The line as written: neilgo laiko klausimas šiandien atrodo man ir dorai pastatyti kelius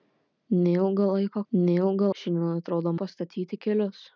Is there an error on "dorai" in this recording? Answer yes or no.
yes